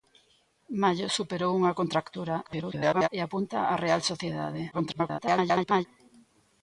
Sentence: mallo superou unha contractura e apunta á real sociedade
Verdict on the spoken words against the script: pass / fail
fail